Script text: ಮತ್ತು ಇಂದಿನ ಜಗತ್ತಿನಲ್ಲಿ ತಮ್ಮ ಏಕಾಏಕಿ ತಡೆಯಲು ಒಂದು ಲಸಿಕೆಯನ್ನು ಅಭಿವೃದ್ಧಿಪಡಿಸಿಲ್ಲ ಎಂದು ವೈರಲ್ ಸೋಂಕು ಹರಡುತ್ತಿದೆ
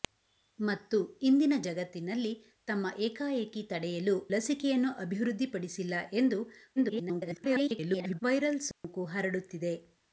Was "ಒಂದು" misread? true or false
true